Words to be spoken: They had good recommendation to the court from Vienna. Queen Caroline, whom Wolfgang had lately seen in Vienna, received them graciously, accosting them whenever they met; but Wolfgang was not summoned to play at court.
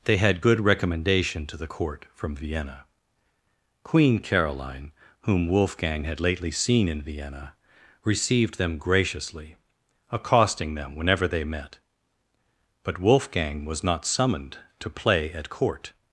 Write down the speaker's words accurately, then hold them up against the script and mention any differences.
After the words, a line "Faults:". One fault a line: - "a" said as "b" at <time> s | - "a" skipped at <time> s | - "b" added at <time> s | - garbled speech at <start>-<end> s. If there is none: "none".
They had good recommendation to the court from Vienna. Queen Caroline, whom Wolfgang had lately seen in Vienna, received them graciously, accosting them whenever they met; but Wolfgang was not summoned to play at court.
Faults:
none